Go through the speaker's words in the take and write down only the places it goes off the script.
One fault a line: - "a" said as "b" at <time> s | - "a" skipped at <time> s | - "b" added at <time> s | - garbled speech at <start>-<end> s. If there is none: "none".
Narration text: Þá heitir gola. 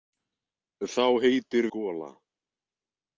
none